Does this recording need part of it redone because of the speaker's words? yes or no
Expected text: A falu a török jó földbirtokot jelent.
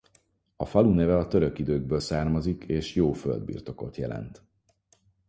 yes